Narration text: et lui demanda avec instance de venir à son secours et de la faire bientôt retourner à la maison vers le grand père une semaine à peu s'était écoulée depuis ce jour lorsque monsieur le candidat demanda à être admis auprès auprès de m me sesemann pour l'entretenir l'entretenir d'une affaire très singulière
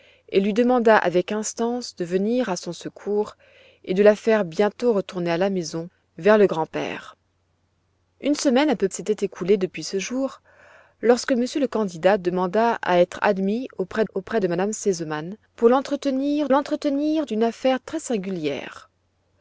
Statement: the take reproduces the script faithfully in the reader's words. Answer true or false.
true